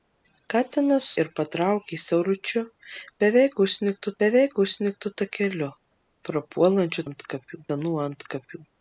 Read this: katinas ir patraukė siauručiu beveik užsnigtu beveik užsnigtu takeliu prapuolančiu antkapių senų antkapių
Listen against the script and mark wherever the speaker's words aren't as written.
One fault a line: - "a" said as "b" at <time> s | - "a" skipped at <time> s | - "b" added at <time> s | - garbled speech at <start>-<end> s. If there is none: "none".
none